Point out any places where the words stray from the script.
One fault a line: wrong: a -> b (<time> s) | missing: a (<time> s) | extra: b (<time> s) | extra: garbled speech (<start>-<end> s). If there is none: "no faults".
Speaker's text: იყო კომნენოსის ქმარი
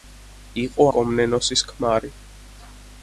no faults